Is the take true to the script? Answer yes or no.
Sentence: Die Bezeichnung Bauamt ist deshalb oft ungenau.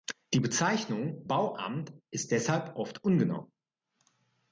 yes